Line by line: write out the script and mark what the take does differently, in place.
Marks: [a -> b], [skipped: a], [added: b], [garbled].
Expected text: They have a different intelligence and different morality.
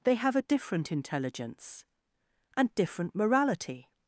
They have a different intelligence and different morality.